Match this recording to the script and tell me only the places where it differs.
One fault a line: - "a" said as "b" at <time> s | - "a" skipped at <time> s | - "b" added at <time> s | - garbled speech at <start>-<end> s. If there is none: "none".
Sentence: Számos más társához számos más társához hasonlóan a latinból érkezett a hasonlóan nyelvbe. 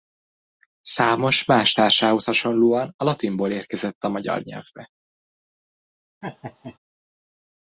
- "számos más társához" skipped at 2.2 s
- "hasonlóan" said as "magyar" at 4.1 s